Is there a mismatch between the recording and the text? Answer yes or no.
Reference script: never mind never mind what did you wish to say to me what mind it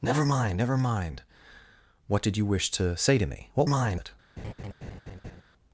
no